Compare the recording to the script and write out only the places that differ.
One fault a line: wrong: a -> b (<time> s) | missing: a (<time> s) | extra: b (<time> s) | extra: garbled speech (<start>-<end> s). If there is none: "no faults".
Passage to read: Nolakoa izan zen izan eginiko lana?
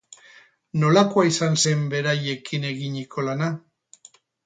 wrong: izan -> beraiekin (2.0 s)